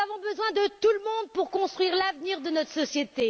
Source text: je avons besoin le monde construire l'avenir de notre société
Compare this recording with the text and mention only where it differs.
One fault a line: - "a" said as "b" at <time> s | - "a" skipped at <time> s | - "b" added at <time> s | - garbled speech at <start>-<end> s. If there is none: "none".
- "je" said as "nous" at 0.0 s
- "de tout" added at 0.5 s
- "pour" added at 1.3 s